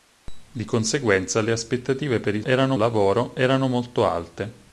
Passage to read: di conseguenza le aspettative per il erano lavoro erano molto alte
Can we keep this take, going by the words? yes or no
yes